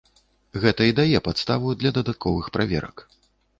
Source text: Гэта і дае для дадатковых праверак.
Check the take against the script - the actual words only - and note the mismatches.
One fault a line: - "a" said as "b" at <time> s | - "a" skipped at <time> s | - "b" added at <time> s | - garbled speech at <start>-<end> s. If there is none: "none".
- "падставу" added at 1.3 s